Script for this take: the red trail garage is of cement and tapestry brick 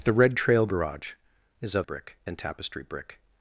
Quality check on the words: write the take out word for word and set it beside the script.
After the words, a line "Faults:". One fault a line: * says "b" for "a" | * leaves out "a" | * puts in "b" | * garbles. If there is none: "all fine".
the red trail garage is of brick and tapestry brick
Faults:
* says "brick" for "cement"